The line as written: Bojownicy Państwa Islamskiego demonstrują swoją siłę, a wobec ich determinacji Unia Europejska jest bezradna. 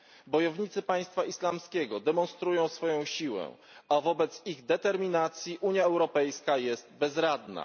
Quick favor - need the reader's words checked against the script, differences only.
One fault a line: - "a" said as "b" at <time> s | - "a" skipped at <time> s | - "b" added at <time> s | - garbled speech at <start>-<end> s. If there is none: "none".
none